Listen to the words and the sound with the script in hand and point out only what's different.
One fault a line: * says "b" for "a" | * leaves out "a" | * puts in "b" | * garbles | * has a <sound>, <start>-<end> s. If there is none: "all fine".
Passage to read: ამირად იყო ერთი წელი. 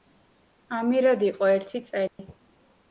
* has a dropout, 2.1-2.2 s